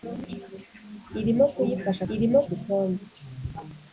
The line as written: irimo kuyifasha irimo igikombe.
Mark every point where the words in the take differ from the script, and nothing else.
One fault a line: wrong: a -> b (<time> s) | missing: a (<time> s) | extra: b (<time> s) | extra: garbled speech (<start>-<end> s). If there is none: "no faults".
no faults